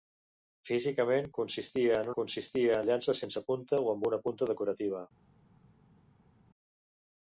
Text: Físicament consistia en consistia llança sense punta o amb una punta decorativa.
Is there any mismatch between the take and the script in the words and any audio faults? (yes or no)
no